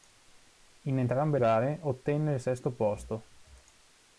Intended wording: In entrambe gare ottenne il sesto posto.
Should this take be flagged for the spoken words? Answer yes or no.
no